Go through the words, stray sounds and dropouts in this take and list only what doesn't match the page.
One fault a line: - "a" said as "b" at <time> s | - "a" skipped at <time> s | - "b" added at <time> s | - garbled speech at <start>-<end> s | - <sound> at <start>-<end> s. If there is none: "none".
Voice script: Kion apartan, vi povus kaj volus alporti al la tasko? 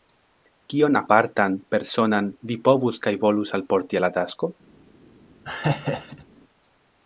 - "personan" added at 1.8 s
- laugh at 5.5-6.3 s